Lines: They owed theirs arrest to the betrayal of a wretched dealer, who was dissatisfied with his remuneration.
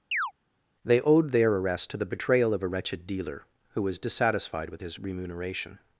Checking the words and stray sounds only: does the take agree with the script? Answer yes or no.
no